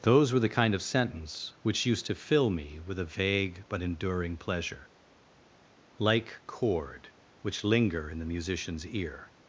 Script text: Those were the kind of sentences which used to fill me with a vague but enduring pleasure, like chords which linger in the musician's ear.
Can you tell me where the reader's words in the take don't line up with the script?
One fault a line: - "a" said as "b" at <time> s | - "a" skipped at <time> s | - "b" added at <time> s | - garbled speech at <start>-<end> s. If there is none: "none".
- "sentences" said as "sentence" at 0.8 s
- "chords" said as "chord" at 6.5 s